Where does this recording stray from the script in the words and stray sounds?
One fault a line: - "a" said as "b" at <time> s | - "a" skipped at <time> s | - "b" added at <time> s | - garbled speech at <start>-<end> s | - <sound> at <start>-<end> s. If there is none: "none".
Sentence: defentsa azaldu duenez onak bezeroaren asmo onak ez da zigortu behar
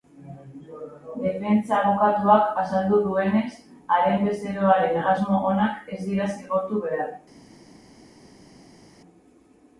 - "abokatuak" added at 1.8 s
- "onak" said as "haren" at 4.0 s
- "da" said as "dira" at 6.1 s